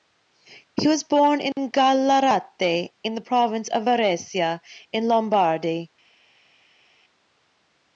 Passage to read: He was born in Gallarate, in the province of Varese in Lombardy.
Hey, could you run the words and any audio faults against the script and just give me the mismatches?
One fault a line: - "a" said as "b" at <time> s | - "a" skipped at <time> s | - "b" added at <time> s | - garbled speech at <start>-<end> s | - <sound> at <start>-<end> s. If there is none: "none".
none